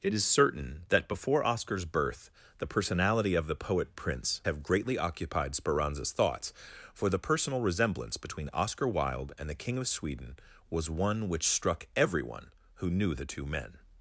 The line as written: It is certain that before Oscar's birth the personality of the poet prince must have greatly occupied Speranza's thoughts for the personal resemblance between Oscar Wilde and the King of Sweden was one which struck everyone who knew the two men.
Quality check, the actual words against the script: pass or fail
fail